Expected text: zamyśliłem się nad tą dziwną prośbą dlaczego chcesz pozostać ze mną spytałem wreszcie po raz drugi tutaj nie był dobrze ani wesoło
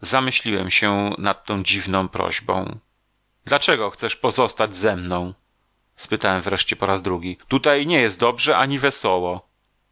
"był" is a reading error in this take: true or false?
true